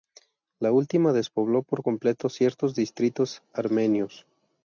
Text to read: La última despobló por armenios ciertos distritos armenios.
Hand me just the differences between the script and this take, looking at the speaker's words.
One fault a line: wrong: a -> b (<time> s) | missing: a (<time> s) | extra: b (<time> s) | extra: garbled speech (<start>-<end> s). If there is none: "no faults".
wrong: armenios -> completo (1.8 s)